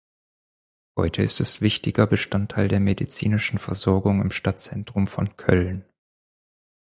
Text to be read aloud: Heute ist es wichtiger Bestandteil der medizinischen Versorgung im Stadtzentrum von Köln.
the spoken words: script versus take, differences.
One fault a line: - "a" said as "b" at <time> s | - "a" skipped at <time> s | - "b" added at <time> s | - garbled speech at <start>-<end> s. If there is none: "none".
none